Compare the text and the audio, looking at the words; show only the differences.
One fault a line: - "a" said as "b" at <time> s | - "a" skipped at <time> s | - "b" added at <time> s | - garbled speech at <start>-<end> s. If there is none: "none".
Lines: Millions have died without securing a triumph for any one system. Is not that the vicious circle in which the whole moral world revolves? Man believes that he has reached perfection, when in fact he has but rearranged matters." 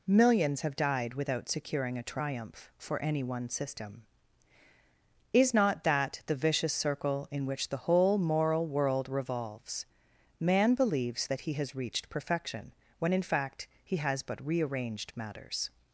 none